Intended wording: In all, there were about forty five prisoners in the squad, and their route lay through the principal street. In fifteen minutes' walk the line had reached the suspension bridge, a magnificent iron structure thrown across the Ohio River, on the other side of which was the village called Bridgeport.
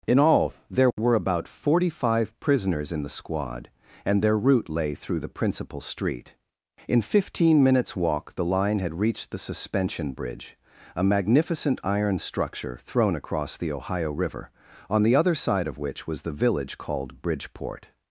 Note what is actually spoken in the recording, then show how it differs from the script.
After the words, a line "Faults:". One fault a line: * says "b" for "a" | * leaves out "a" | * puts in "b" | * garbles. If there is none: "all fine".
In all, there were about forty five prisoners in the squad, and their route lay through the principal street. In fifteen minutes' walk the line had reached the suspension bridge, a magnificent iron structure thrown across the Ohio River, on the other side of which was the village called Bridgeport.
Faults:
all fine